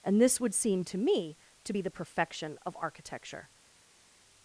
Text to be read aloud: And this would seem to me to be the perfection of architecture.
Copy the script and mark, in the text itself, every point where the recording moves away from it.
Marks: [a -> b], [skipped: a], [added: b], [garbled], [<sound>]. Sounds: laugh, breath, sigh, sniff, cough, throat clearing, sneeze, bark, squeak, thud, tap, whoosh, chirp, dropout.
And this would seem to me to be the perfection of architecture.